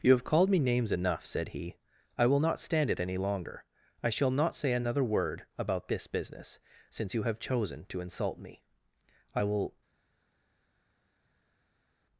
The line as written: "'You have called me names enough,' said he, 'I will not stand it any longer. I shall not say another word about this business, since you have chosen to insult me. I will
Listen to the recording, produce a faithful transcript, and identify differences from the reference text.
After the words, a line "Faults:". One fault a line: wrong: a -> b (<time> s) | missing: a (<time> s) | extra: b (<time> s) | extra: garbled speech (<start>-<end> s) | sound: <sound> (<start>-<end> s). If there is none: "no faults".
"'You have called me names enough,' said he, 'I will not stand it any longer. I shall not say another word about this business, since you have chosen to insult me. I will
Faults:
no faults